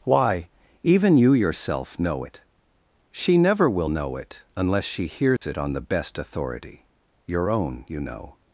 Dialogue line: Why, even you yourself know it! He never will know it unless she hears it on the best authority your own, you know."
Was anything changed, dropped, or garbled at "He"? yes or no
yes